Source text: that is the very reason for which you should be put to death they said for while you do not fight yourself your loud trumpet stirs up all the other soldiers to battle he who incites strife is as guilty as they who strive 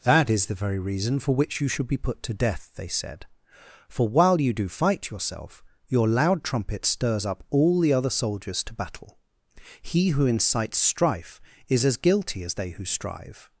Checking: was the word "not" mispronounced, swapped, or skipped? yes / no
yes